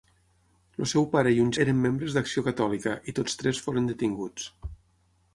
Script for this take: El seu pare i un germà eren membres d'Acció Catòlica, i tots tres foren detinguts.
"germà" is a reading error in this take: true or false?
true